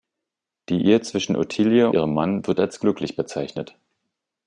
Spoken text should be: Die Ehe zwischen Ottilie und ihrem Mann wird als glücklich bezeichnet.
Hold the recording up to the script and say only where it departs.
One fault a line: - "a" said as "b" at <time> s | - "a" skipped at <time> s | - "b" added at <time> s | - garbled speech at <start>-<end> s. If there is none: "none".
- "und" skipped at 1.9 s